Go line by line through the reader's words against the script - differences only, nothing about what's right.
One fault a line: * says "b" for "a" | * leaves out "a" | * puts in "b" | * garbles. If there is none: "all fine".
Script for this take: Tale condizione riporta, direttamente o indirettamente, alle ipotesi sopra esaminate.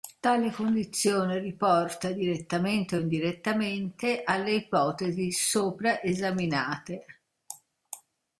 all fine